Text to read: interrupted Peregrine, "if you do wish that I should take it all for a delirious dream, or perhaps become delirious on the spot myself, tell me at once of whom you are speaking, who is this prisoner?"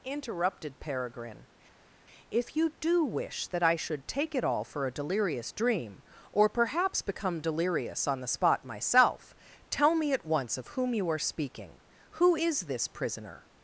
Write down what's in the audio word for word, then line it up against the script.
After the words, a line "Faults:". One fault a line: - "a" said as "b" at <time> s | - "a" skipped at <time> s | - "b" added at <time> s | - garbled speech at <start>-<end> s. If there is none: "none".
interrupted Peregrine, "if you do wish that I should take it all for a delirious dream, or perhaps become delirious on the spot myself, tell me at once of whom you are speaking, who is this prisoner?"
Faults:
none